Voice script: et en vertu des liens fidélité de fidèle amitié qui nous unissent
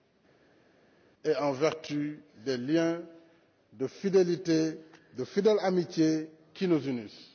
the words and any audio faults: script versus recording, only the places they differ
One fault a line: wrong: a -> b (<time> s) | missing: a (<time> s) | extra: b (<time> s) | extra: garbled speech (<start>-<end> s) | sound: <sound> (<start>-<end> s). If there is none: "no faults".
extra: de (3.7 s)